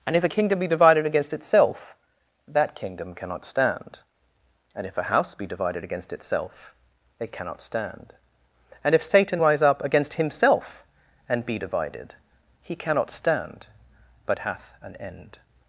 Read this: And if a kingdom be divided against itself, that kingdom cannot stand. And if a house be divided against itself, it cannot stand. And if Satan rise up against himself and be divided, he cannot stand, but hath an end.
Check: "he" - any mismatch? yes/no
no